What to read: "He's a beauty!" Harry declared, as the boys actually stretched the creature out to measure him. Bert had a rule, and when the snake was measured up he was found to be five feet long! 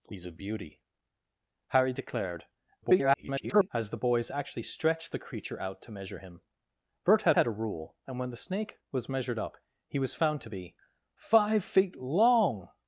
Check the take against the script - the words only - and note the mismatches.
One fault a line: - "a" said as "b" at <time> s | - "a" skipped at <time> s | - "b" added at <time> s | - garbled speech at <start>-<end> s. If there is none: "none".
- garbled speech at 2.8-3.7 s
- "had" added at 7.3 s